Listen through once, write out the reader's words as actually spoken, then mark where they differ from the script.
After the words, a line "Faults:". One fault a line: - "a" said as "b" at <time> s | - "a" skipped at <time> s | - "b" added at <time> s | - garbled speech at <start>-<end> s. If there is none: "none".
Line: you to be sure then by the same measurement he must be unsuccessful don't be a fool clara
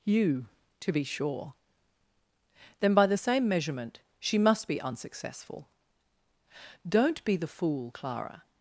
you to be sure then by the same measurement she must be unsuccessful don't be the fool clara
Faults:
- "he" said as "she" at 4.2 s
- "a" said as "the" at 7.4 s